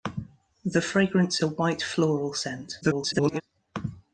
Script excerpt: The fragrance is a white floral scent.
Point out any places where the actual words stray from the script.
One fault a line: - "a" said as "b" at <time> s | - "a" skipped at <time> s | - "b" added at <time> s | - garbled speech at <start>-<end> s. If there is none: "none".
- "is" skipped at 1.4 s
- garbled speech at 2.8-3.4 s